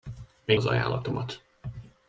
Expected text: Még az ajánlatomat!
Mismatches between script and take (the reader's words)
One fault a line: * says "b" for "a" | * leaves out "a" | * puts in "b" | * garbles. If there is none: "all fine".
all fine